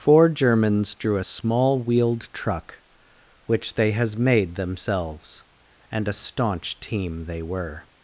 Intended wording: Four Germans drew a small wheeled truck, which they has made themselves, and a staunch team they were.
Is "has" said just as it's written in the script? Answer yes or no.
yes